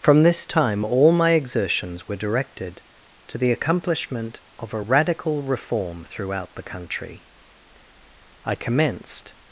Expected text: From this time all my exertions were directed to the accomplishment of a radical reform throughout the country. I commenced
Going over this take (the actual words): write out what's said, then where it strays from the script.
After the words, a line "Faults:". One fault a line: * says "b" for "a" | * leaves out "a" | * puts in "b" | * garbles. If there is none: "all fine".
From this time all my exertions were directed to the accomplishment of a radical reform throughout the country. I commenced
Faults:
all fine